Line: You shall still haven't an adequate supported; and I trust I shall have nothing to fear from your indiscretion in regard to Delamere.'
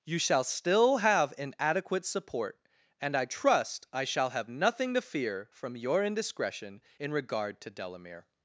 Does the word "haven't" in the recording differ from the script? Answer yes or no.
yes